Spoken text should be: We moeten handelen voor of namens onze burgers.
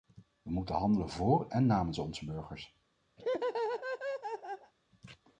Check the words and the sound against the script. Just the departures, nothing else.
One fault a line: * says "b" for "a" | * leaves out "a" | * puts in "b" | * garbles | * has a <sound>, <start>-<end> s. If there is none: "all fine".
* says "en" for "of"
* has a laugh, 3.2-4.7 s